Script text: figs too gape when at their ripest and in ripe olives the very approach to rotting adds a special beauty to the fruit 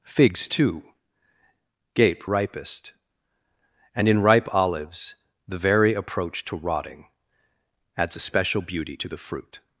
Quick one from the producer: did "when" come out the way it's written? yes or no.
no